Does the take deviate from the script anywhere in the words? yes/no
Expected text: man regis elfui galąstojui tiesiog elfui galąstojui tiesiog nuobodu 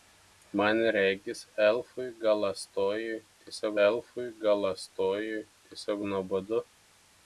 no